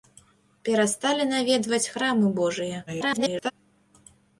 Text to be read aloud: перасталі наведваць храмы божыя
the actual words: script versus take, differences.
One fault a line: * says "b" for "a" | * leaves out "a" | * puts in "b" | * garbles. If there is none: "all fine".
* garbles